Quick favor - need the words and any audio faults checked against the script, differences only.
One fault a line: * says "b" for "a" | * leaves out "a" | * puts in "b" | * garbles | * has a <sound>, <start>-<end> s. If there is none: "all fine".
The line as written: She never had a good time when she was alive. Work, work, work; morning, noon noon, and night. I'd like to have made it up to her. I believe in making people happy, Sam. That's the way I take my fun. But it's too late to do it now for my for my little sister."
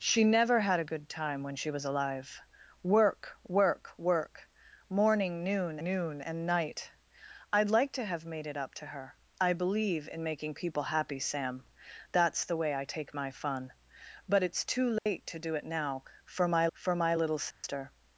* has a dropout, 15.0-15.1 s
* has a dropout, 17.5-17.6 s